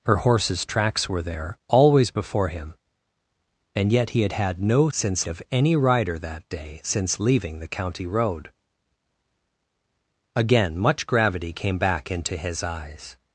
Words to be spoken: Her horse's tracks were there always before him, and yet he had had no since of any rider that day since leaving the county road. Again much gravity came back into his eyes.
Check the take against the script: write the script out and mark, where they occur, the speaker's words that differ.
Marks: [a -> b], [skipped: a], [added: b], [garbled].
Her horse's tracks were there always before him, and yet he had had no since of any rider that day since leaving the county road. Again much gravity came back into his eyes.